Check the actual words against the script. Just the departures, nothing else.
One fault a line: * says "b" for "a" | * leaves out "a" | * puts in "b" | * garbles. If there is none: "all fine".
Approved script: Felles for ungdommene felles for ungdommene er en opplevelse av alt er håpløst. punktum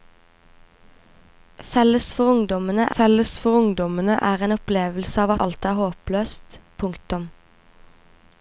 all fine